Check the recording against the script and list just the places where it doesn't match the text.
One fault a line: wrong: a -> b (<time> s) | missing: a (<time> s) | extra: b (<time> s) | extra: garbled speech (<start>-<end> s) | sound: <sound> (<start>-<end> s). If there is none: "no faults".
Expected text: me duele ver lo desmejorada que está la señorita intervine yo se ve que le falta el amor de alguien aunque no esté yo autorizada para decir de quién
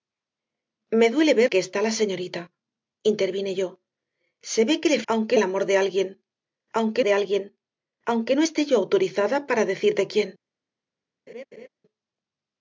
missing: lo desmejorada (1.5 s)
wrong: falta -> aunque (5.1 s)
extra: de alguien aunque (7.0 s)
sound: laugh (11.3-11.7 s)